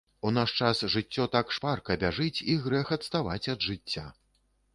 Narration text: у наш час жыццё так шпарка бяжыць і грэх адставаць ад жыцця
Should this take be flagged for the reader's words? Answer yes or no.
no